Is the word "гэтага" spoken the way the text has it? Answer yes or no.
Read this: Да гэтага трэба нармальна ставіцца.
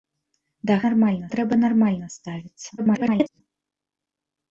no